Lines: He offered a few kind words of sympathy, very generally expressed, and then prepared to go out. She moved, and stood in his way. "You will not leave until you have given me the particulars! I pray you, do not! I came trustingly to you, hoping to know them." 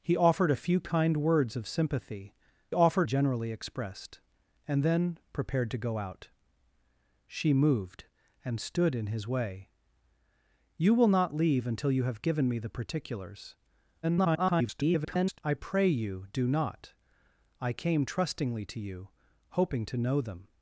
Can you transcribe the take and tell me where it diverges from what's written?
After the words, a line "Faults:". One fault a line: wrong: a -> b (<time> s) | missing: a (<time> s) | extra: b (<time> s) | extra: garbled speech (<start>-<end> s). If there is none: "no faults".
He offered a few kind words of sympathy, offered generally expressed, and then prepared to go out. She moved, and stood in his way. "You will not leave until you have given me the particulars! [garbled] I pray you, do not! I came trustingly to you, hoping to know them."
Faults:
wrong: very -> offered (2.7 s)
extra: garbled speech (14.0-15.4 s)